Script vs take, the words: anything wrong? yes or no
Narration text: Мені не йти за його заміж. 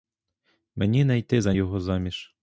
no